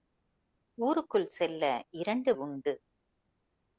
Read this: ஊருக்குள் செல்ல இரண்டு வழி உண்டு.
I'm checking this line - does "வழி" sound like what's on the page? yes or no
no